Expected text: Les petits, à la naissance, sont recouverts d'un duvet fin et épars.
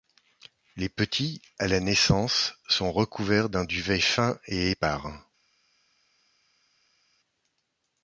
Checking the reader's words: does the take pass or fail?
pass